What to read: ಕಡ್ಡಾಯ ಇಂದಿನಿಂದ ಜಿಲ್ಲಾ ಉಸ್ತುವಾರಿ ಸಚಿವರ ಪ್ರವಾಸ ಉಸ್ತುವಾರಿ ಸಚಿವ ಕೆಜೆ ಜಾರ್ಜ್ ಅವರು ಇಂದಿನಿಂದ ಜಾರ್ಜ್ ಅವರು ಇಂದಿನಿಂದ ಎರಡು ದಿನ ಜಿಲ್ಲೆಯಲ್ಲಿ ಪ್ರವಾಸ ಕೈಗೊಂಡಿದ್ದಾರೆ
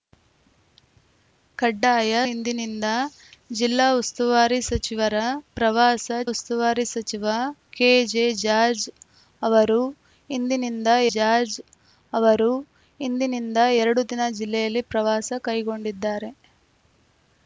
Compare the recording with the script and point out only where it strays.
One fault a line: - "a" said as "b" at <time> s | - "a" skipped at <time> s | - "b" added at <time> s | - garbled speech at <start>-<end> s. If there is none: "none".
none